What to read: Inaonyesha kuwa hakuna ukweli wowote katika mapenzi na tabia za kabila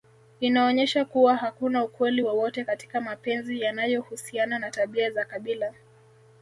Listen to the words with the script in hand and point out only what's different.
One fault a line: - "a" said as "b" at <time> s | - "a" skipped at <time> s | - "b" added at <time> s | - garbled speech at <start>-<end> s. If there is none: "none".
- "yanayohusiana" added at 3.6 s